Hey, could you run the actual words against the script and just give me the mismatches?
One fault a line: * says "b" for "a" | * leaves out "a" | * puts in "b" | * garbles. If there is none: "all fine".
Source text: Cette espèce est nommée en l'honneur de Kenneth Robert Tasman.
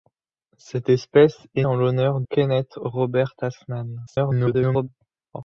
* leaves out "nommée"
* leaves out "de"
* garbles